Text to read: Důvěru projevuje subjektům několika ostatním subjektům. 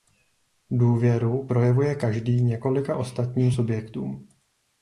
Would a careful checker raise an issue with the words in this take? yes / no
yes